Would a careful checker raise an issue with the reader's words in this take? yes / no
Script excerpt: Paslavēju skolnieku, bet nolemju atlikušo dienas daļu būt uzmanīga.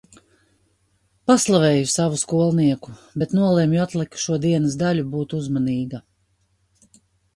yes